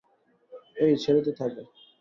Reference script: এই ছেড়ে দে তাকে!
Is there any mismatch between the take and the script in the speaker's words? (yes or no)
no